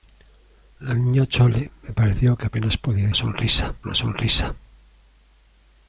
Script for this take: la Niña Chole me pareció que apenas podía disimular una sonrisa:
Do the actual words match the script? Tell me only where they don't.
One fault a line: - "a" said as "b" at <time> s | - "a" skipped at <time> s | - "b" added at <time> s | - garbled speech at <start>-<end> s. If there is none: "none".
- "disimular" said as "sonrisa" at 3.1 s